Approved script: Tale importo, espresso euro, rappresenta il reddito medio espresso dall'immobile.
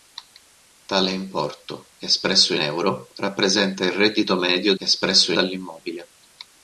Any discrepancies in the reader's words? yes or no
no